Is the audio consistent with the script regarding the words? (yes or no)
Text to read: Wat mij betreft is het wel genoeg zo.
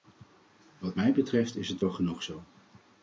yes